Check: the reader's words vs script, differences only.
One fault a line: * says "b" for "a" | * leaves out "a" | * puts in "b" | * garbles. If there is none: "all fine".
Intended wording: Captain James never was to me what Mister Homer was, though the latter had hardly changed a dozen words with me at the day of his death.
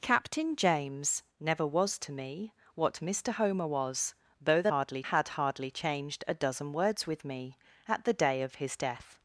* says "hardly" for "latter"